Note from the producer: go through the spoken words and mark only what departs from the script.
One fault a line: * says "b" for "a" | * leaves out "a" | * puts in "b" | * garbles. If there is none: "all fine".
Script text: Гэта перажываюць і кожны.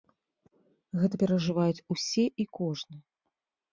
* puts in "усе"